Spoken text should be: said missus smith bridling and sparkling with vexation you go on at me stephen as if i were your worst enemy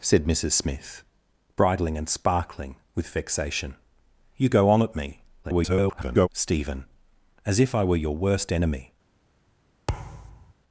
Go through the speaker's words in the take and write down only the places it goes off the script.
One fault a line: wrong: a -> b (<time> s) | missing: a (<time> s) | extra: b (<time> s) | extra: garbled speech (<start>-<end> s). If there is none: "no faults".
extra: garbled speech (5.4-6.3 s)